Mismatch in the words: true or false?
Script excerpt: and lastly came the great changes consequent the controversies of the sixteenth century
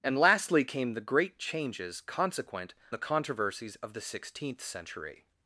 false